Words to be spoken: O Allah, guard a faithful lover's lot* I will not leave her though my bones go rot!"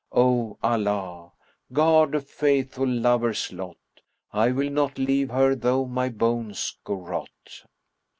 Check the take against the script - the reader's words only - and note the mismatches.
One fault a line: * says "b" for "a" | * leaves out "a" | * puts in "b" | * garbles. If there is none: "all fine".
all fine